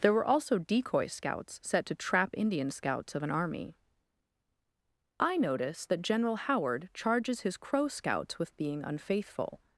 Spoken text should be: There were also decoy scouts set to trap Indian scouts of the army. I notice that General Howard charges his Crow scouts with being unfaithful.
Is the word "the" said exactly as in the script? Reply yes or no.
no